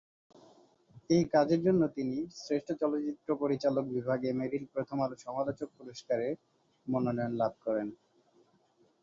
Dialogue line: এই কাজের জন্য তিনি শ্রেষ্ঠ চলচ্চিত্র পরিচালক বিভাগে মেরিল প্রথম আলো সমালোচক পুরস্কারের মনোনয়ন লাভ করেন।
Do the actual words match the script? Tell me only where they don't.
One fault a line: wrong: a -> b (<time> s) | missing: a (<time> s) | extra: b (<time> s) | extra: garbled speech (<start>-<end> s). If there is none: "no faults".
no faults